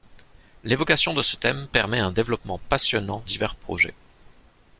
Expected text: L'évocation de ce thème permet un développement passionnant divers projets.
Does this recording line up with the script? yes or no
yes